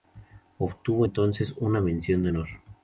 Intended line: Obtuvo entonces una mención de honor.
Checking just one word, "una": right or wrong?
right